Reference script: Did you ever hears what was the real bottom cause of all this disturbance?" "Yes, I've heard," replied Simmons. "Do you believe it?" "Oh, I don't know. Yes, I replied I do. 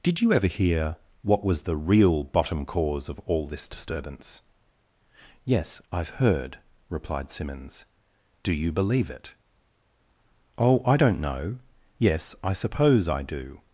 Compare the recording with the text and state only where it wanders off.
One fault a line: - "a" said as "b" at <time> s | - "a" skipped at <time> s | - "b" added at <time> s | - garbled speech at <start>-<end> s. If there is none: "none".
- "hears" said as "hear" at 0.5 s
- "replied" said as "suppose" at 12.5 s